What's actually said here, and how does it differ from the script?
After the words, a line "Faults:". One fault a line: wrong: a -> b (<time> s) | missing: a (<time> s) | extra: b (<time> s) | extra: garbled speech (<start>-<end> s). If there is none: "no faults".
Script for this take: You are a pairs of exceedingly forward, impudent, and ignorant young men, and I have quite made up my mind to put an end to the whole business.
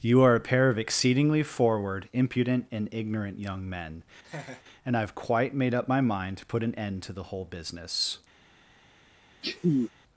You are a pair of exceedingly forward, impudent, and ignorant young men, and I have quite made up my mind to put an end to the whole business.
Faults:
wrong: pairs -> pair (0.4 s)